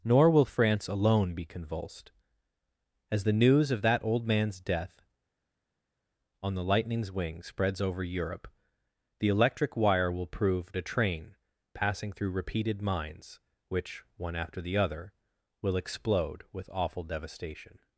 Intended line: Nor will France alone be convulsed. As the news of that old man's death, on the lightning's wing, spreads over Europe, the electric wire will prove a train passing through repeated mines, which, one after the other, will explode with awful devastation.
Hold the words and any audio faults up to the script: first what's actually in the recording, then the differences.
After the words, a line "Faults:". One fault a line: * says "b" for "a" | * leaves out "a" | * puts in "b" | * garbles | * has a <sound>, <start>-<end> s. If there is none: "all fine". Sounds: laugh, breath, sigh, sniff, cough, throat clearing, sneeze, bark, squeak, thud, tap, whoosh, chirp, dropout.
Nor will France alone be convulsed. As the news of that old man's death, on the lightning's wing, spreads over Europe, the electric wire will prove a train passing through repeated mines, which, one after the other, will explode with awful devastation.
Faults:
all fine